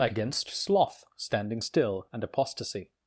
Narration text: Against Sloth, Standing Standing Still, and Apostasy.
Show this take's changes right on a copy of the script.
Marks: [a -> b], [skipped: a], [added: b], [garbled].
Against Sloth, Standing [skipped: Standing] Still, and Apostasy.